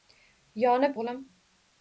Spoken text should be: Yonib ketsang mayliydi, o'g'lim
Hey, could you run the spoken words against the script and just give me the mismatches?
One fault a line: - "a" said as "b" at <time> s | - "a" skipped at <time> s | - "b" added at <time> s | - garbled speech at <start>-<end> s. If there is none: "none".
- "ketsang mayliydi" skipped at 1.0 s